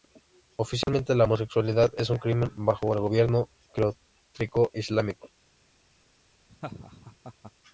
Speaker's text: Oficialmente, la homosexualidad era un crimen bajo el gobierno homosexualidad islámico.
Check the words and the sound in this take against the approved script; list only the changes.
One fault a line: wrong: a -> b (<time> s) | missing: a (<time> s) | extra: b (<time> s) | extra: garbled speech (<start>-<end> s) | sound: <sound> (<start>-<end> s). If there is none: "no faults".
sound: dropout (0.8-0.9 s)
wrong: era -> es (2.0 s)
wrong: homosexualidad -> teocrático (3.7 s)
sound: laugh (6.5-7.5 s)